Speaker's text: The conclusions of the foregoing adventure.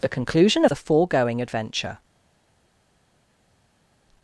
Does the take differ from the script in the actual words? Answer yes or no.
yes